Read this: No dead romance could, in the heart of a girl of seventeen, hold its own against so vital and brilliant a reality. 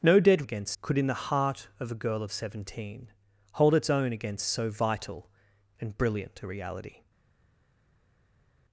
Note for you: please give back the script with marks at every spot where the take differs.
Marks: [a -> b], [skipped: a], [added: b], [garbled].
No dead [romance -> against] could, in the heart of a girl of seventeen, hold its own against so vital and brilliant a reality.